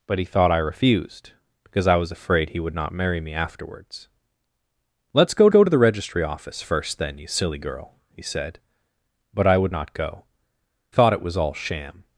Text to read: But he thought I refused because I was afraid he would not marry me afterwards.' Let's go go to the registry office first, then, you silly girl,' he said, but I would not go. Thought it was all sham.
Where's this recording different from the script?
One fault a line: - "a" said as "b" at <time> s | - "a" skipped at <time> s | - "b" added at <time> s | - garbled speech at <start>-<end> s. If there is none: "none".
none